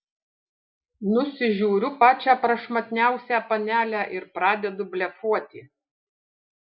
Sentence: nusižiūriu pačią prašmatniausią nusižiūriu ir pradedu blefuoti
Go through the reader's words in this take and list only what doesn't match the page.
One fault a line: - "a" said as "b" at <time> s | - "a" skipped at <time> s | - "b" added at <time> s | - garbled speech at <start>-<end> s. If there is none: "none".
- "nusižiūriu" said as "panelę" at 3.5 s